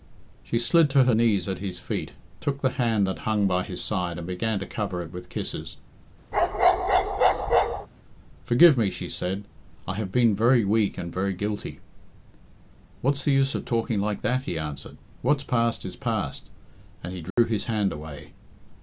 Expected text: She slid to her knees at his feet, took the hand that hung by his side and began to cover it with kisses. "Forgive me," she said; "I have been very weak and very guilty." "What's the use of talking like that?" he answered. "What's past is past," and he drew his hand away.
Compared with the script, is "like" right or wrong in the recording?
right